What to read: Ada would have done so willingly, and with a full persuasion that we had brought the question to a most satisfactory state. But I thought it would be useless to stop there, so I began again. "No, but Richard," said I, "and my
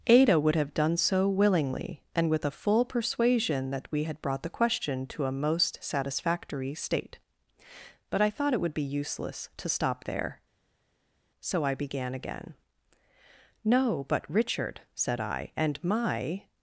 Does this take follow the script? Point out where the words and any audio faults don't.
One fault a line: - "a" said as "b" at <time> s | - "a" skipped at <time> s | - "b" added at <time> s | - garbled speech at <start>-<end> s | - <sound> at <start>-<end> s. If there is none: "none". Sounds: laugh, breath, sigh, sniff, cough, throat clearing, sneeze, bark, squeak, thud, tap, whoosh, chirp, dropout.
none